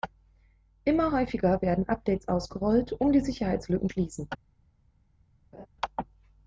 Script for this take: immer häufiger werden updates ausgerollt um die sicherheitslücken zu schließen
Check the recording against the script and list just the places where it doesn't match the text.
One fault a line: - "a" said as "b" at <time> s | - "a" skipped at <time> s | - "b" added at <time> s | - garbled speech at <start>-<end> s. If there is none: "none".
- "zu" skipped at 3.9 s